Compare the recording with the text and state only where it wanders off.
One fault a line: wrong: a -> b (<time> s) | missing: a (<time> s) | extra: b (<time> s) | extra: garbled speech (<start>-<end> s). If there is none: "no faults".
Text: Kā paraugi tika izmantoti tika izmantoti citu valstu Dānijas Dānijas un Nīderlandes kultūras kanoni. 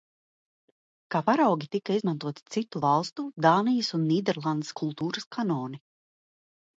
missing: tika izmantoti (2.4 s)
missing: Dānijas (3.9 s)